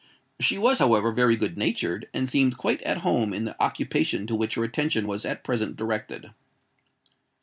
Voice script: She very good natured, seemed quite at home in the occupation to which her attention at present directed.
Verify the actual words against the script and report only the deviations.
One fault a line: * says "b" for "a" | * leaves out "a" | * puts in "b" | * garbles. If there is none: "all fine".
* puts in "was however"
* puts in "and"
* puts in "was"